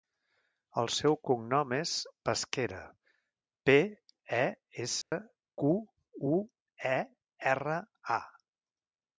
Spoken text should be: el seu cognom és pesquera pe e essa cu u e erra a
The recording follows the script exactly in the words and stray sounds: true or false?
false